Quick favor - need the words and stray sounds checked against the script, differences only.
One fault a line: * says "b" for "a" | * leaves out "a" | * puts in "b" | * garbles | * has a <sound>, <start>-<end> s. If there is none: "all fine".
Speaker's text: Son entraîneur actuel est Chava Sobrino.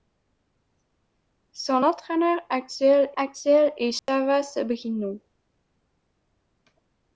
* puts in "actuel"
* has a dropout, 4.0-4.1 s